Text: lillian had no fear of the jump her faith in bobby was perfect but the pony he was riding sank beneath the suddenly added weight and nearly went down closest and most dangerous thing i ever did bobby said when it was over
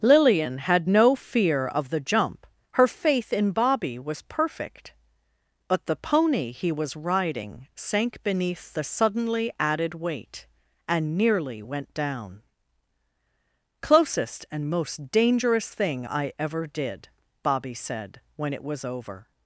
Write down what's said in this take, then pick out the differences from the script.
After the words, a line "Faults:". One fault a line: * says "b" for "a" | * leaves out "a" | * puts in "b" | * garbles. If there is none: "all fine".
lillian had no fear of the jump her faith in bobby was perfect but the pony he was riding sank beneath the suddenly added weight and nearly went down closest and most dangerous thing i ever did bobby said when it was over
Faults:
all fine